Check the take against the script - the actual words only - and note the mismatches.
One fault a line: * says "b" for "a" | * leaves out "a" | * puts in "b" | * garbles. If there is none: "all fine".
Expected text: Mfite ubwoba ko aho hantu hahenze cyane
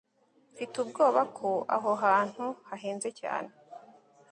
all fine